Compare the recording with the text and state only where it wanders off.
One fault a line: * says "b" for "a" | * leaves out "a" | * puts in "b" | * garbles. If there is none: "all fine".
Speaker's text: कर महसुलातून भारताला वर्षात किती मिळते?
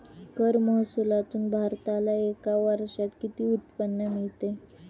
* puts in "एका"
* puts in "उत्पन्न"